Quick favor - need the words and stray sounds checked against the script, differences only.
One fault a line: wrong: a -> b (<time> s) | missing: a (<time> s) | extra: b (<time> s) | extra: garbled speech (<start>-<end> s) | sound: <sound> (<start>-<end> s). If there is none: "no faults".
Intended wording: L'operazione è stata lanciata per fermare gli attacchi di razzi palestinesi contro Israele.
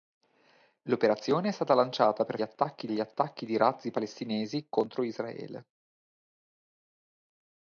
wrong: fermare -> attacchi (2.4 s)